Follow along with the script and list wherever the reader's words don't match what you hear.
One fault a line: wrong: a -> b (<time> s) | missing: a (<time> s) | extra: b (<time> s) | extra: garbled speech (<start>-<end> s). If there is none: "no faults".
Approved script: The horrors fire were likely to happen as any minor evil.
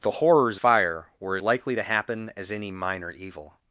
no faults